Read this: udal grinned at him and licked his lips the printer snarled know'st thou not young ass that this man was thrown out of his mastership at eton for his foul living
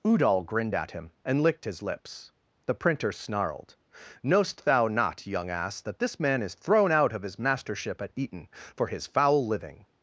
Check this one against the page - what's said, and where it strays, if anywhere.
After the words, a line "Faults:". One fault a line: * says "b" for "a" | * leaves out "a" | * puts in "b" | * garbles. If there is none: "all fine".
udal grinned at him and licked his lips the printer snarled know'st thou not young ass that this man is thrown out of his mastership at eton for his foul living
Faults:
* says "is" for "was"